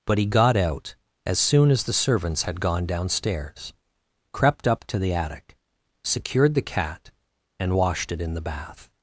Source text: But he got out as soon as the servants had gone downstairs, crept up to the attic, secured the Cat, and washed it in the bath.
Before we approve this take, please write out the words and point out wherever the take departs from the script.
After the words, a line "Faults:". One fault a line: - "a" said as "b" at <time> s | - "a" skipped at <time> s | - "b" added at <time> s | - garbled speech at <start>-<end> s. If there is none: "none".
But he got out as soon as the servants had gone downstairs, crept up to the attic, secured the Cat, and washed it in the bath.
Faults:
none